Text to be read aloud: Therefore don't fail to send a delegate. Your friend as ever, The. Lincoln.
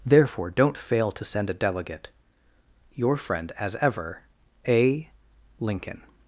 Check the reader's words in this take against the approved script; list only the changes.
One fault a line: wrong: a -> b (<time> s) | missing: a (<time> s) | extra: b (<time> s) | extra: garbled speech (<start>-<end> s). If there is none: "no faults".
wrong: The -> A (4.7 s)